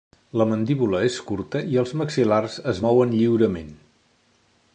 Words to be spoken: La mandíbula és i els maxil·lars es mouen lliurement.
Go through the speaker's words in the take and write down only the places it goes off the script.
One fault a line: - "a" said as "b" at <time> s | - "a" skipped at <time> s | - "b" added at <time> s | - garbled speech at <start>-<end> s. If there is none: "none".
- "curta" added at 1.3 s